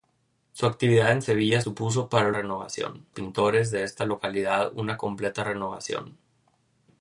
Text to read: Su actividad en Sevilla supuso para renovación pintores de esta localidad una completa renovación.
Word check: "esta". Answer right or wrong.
right